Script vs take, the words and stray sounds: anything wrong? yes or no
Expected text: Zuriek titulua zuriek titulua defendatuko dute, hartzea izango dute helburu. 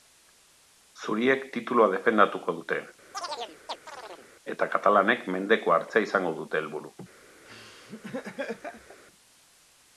yes